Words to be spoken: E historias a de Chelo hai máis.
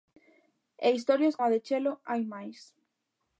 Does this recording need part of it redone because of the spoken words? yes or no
no